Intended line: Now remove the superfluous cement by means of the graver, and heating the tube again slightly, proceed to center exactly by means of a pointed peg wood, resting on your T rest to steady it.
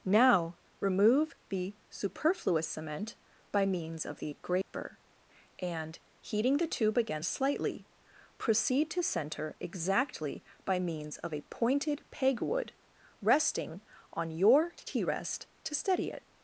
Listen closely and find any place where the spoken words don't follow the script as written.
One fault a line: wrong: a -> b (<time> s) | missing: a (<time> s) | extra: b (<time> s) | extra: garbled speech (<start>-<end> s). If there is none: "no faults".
no faults